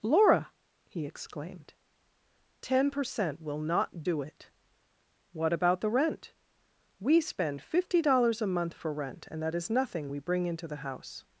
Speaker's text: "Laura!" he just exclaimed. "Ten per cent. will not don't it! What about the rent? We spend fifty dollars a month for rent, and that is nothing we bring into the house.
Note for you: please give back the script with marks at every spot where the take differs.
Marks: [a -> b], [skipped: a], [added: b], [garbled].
"Laura!" he [skipped: just] exclaimed. "Ten per cent. will not [don't -> do] it! What about the rent? We spend fifty dollars a month for rent, and that is nothing we bring into the house.